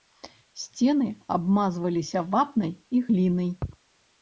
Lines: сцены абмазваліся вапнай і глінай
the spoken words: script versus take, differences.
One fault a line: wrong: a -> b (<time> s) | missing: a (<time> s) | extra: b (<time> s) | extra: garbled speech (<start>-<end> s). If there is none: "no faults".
no faults